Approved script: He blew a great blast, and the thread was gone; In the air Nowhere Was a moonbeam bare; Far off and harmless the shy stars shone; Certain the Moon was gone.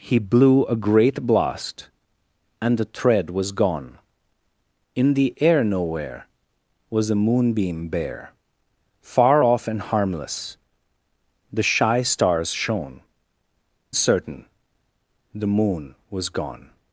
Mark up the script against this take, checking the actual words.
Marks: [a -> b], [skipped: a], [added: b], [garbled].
He blew a great blast, and the thread was gone; In the air Nowhere Was a moonbeam bare; Far off and harmless the shy stars shone; Certain the Moon was gone.